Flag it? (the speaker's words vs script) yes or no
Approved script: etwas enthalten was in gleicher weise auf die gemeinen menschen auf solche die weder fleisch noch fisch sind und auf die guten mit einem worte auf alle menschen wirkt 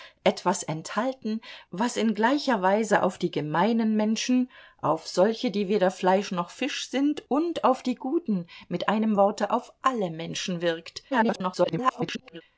yes